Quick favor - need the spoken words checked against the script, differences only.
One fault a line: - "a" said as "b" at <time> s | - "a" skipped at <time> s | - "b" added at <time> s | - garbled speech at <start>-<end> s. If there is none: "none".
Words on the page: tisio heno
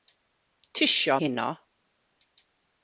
none